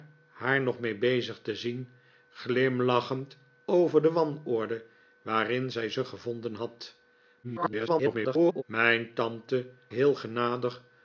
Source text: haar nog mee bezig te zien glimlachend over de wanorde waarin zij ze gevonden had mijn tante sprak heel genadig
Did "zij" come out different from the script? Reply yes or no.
no